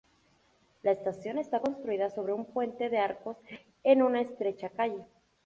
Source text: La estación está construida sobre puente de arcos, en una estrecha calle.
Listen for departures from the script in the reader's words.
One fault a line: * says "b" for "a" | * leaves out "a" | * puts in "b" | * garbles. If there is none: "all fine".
* puts in "un"